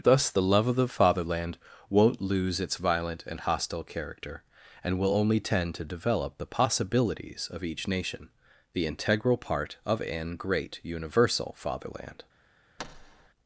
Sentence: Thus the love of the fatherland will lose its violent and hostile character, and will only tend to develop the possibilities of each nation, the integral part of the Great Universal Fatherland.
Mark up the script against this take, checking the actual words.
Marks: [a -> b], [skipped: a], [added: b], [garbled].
Thus the love of the fatherland [will -> won't] lose its violent and hostile character, and will only tend to develop the possibilities of each nation, the integral part of [the -> an] Great Universal Fatherland.